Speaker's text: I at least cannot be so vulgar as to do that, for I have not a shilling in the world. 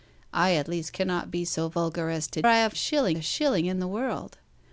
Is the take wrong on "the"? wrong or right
right